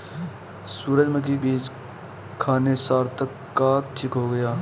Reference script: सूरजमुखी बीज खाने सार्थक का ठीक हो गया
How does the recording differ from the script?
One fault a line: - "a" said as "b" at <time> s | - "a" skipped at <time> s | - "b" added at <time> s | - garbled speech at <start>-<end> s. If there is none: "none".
none